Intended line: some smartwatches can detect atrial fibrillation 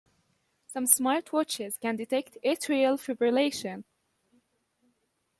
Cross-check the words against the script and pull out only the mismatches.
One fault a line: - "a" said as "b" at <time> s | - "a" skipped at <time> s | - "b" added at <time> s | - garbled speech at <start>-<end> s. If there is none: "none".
none